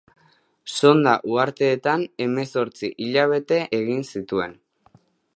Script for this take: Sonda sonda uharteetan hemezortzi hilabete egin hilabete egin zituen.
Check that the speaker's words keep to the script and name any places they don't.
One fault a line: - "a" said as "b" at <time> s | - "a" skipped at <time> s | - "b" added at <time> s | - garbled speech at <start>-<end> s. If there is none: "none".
- "sonda" skipped at 1.1 s
- "hilabete egin" skipped at 4.1 s